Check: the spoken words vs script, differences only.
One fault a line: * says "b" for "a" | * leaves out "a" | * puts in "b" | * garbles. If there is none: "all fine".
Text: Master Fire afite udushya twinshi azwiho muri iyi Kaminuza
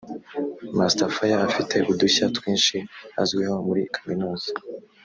* leaves out "iyi"